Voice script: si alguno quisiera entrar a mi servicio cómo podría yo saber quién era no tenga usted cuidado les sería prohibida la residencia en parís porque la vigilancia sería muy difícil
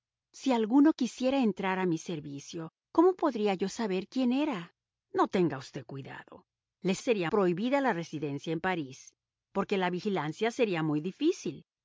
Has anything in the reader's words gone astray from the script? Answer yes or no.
no